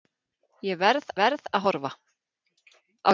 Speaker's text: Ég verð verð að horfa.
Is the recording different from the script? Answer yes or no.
no